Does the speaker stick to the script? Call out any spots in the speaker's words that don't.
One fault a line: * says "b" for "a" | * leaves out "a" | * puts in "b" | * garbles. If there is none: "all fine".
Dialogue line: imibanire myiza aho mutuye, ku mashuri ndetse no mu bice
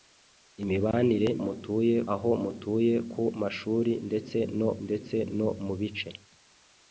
* says "mutuye" for "myiza"
* puts in "ndetse no"